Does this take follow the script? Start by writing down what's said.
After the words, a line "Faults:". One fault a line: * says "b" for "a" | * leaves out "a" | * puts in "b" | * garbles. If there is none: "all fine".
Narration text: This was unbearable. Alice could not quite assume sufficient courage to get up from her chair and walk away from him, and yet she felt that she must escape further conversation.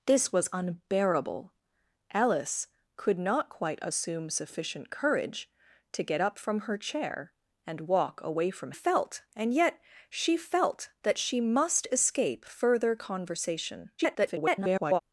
This was unbearable. Alice could not quite assume sufficient courage to get up from her chair and walk away from felt, and yet she felt that she must escape further conversation. [garbled]
Faults:
* says "felt" for "him"
* garbles